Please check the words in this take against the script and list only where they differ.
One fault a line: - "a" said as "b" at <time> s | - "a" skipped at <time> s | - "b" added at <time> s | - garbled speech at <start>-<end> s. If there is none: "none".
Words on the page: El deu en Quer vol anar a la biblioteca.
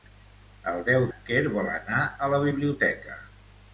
none